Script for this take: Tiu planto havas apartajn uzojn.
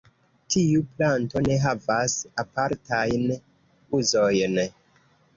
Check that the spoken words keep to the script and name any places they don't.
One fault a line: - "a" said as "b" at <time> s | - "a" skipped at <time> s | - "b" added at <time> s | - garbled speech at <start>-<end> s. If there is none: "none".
- "ne" added at 1.5 s